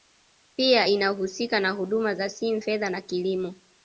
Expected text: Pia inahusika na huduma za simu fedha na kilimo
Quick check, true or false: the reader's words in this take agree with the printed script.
true